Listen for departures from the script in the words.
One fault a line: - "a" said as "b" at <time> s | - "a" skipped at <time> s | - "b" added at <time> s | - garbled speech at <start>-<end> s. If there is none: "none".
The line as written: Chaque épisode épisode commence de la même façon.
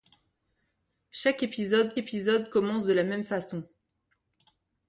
none